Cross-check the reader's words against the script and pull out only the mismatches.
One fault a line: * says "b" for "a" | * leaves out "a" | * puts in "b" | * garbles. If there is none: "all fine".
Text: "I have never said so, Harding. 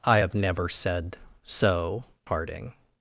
all fine